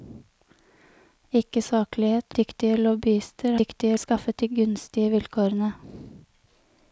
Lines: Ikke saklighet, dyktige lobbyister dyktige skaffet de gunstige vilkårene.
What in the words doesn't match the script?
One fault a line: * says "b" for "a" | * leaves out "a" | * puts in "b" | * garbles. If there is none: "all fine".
all fine